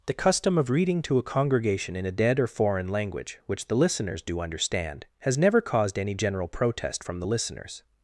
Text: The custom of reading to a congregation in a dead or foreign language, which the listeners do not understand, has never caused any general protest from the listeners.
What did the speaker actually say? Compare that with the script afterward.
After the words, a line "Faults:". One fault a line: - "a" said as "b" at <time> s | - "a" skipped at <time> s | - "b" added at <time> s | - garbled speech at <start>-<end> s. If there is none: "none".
The custom of reading to a congregation in a dead or foreign language, which the listeners do understand, has never caused any general protest from the listeners.
Faults:
- "not" skipped at 4.4 s